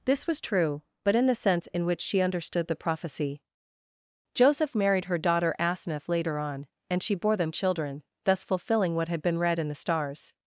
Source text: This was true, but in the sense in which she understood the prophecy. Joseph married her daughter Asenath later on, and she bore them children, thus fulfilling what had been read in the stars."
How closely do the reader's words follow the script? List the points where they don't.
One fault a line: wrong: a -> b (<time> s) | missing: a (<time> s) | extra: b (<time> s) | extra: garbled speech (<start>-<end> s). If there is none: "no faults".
no faults